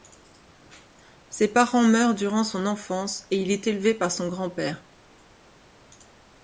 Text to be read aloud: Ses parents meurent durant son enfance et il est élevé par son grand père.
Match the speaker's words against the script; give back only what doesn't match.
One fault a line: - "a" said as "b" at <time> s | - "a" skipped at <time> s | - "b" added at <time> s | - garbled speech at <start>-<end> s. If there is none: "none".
none